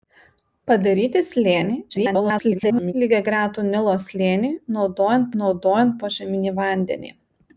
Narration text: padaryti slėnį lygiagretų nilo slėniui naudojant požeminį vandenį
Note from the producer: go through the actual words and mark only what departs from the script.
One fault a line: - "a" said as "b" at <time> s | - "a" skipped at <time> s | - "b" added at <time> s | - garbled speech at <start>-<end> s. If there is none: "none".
- garbled speech at 1.9-2.9 s
- "naudojant" added at 5.4 s